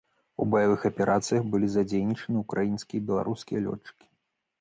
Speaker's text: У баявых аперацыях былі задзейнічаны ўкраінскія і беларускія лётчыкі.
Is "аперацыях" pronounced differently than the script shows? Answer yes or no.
no